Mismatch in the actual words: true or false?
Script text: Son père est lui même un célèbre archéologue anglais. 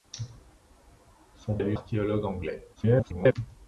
true